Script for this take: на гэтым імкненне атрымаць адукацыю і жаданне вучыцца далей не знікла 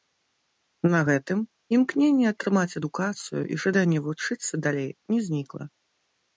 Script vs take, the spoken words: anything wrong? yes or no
no